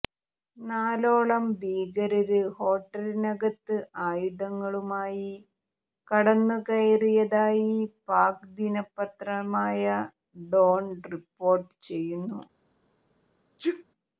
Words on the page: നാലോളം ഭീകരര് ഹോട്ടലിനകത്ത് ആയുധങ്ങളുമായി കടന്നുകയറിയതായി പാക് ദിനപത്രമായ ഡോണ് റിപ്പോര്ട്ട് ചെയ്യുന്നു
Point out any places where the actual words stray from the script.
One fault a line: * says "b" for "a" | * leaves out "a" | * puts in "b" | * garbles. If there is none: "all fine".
all fine